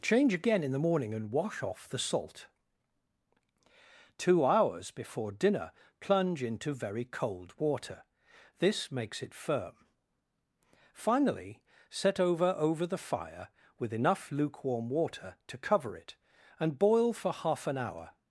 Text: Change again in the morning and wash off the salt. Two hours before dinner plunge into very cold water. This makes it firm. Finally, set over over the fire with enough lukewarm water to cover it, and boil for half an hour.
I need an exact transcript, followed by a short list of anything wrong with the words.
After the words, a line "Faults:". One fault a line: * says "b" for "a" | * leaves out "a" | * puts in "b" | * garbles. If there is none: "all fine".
Change again in the morning and wash off the salt. Two hours before dinner plunge into very cold water. This makes it firm. Finally, set over over the fire with enough lukewarm water to cover it, and boil for half an hour.
Faults:
all fine